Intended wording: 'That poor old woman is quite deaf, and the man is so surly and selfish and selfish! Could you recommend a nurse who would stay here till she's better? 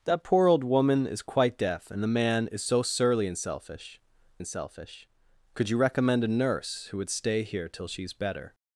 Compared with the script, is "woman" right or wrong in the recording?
right